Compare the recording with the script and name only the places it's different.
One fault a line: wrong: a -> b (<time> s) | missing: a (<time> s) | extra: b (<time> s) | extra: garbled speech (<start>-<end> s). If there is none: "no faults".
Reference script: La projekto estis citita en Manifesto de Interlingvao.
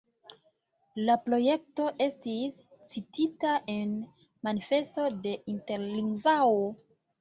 no faults